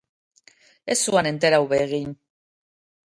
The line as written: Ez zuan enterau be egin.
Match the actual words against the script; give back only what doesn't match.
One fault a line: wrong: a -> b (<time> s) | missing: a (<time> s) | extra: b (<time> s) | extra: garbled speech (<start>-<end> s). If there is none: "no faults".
no faults